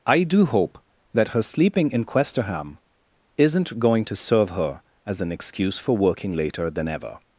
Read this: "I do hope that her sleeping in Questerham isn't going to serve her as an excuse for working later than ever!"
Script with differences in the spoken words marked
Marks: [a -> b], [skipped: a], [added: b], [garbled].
"I do hope that her sleeping in Questerham isn't going to serve her as an excuse for working later than ever!"